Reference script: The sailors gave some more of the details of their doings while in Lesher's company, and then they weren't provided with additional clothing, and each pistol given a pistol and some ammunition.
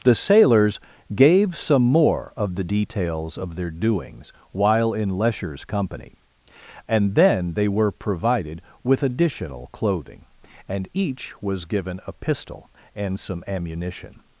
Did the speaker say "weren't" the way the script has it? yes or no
no